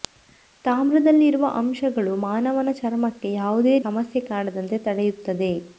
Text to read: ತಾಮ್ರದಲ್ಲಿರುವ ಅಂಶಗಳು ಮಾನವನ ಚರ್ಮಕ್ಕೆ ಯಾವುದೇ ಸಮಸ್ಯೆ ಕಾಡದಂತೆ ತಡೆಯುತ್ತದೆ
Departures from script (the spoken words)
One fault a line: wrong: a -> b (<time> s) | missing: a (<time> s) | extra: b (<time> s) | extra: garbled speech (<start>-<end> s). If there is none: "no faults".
no faults